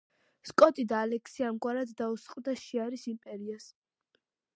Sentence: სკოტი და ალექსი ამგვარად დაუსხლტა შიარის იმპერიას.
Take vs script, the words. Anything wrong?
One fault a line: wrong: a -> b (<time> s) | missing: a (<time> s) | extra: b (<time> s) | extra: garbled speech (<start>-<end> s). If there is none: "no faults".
no faults